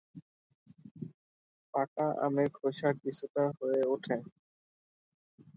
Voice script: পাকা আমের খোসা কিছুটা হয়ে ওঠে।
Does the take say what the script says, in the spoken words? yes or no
yes